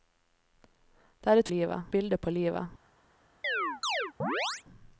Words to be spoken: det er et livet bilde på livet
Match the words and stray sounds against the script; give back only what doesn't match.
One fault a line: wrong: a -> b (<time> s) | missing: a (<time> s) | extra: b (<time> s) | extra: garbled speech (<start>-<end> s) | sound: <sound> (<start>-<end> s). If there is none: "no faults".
sound: chirp (3.4-4.6 s)